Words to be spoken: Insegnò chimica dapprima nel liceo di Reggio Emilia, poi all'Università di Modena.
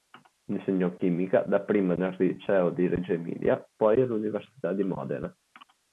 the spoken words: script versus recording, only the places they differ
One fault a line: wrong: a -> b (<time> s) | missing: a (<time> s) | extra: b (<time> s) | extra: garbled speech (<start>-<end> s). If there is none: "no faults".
no faults